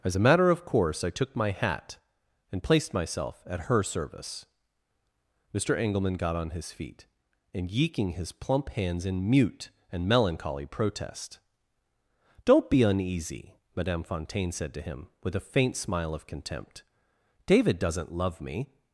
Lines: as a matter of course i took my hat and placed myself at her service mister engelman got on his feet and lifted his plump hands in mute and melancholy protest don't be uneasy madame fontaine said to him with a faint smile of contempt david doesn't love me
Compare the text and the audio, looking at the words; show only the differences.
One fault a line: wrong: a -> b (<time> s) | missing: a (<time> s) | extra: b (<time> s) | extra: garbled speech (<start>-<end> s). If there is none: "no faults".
wrong: lifted -> yeeking (7.7 s)